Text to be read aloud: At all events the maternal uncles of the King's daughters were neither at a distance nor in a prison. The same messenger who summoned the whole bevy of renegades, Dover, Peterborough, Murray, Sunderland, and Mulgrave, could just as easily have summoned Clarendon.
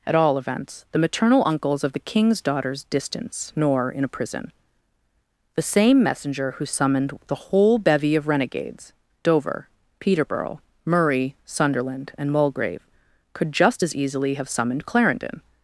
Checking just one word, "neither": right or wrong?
wrong